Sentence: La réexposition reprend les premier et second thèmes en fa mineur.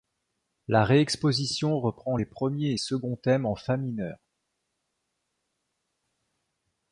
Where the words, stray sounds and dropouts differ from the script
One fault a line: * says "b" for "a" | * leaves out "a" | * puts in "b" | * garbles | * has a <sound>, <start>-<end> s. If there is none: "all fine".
all fine